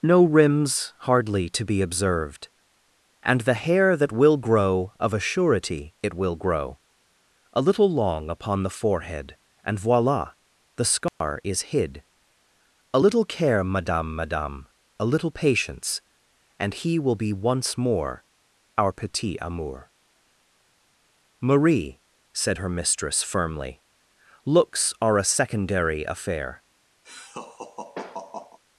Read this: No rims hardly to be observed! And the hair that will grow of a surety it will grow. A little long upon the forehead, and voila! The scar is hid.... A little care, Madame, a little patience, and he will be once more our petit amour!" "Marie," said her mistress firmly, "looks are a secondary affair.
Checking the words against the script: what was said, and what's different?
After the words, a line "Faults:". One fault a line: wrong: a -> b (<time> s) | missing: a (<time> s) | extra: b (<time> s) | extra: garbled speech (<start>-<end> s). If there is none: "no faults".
No rims hardly to be observed! And the hair that will grow of a surety it will grow. A little long upon the forehead, and voila! The scar is hid.... A little care, Madame Madame, a little patience, and he will be once more our petit amour!" "Marie," said her mistress firmly, "looks are a secondary affair.
Faults:
extra: Madame (14.1 s)